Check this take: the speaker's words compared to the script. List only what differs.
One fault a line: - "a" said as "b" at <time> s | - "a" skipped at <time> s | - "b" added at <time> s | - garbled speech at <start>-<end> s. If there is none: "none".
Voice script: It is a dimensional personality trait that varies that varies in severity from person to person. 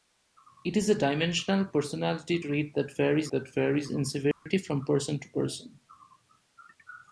none